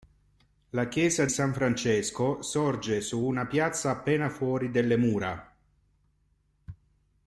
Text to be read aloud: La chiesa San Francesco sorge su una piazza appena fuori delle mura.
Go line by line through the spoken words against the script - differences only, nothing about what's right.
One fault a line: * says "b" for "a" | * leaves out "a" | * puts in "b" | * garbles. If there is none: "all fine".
all fine